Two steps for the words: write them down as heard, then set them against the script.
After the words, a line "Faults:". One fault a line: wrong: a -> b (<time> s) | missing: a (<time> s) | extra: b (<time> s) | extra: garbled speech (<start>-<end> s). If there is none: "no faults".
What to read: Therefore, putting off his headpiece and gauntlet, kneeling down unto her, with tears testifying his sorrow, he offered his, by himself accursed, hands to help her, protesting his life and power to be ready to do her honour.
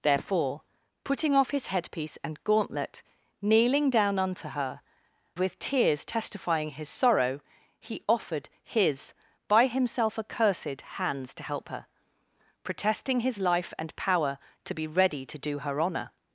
Therefore, putting off his headpiece and gauntlet, kneeling down unto her, with tears testifying his sorrow, he offered his, by himself accursed, hands to help her, protesting his life and power to be ready to do her honour.
Faults:
no faults